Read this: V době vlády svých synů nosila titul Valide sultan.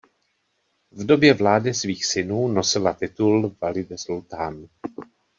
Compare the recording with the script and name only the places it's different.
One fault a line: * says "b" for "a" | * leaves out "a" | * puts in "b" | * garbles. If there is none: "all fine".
all fine